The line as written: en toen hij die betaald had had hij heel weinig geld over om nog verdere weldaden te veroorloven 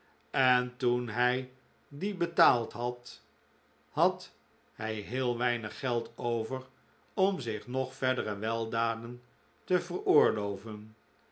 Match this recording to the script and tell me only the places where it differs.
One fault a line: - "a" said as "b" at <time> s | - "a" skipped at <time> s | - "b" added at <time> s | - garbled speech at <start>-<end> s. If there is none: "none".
- "zich" added at 7.4 s